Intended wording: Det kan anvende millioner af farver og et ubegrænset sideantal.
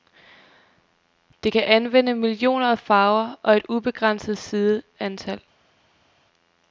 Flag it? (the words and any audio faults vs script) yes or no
no